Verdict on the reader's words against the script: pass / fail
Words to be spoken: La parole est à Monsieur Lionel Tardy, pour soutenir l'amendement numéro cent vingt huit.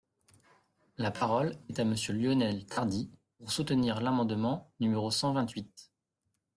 pass